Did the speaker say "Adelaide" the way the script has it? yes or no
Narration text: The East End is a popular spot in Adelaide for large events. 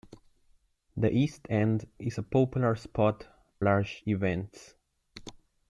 no